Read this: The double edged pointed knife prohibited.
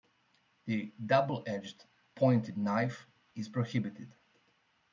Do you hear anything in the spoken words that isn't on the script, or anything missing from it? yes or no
yes